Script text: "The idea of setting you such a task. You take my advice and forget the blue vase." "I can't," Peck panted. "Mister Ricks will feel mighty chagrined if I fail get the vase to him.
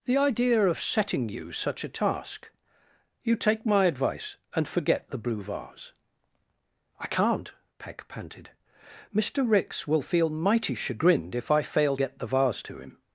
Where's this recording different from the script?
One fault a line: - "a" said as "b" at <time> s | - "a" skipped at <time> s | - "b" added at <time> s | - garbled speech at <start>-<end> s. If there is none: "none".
none